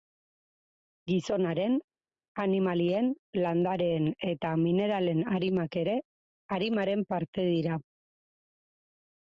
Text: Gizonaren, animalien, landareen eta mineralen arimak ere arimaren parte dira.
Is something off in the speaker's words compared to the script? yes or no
no